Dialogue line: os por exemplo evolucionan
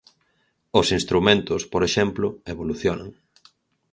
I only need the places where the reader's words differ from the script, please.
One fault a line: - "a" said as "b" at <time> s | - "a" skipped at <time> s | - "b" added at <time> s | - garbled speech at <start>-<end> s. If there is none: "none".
- "instrumentos" added at 1.0 s